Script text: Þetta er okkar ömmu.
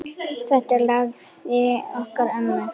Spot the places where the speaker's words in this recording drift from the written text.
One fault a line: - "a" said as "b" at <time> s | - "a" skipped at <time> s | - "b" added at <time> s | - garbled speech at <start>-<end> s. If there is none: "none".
- "lagið" added at 0.9 s